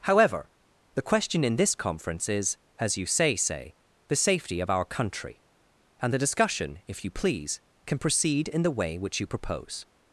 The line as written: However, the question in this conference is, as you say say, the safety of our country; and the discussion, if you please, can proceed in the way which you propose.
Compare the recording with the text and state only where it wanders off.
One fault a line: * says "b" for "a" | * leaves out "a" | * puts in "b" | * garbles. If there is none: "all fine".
all fine